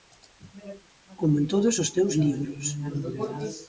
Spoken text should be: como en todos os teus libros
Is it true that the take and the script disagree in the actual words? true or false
false